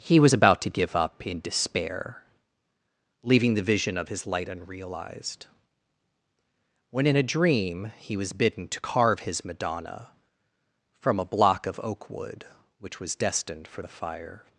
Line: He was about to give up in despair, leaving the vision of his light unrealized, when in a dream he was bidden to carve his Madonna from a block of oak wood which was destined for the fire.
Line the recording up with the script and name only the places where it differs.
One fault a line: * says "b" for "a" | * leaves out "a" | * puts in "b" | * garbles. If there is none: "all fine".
all fine